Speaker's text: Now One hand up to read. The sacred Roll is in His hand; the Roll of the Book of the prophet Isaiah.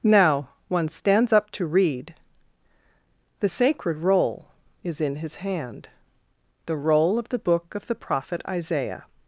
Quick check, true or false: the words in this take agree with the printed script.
false